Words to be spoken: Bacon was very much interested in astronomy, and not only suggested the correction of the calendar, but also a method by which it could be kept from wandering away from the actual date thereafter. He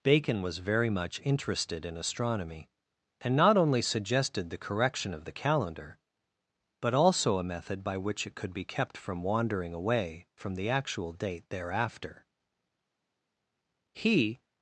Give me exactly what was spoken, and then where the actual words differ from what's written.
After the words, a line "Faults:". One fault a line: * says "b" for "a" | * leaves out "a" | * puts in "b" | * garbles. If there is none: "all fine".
Bacon was very much interested in astronomy, and not only suggested the correction of the calendar, but also a method by which it could be kept from wandering away from the actual date thereafter. He
Faults:
all fine